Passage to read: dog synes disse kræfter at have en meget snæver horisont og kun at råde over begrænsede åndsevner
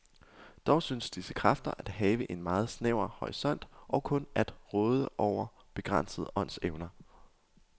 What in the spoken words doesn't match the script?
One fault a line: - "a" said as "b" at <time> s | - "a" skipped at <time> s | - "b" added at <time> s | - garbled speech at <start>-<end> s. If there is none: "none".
none